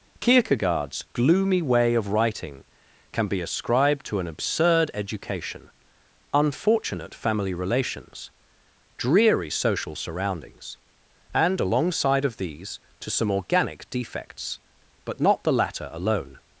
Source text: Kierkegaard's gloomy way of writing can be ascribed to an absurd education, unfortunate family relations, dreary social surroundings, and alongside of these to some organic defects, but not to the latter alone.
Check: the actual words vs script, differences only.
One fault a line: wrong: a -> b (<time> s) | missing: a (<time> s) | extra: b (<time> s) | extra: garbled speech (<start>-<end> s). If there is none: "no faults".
missing: to (15.4 s)